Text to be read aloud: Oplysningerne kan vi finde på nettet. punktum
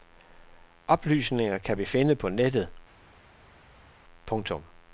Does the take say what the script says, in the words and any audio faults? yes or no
yes